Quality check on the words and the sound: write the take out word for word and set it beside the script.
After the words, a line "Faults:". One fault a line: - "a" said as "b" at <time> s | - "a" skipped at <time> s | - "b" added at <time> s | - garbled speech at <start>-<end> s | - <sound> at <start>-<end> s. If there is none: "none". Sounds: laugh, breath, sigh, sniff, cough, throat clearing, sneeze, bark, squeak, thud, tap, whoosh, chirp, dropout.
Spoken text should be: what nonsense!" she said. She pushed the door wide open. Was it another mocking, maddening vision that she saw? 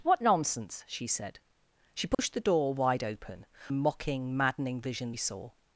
what nonsense!" she said. She pushed the door wide open. Mocking, maddening vision saw?
Faults:
- dropout at 2.1-2.2 s
- "Was it another" skipped at 3.5 s
- "that she" skipped at 5.1 s